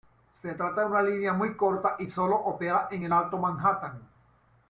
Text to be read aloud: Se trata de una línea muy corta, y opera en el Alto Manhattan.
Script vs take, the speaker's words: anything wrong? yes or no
yes